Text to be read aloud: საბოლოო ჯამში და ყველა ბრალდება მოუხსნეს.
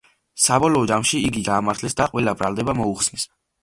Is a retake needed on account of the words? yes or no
yes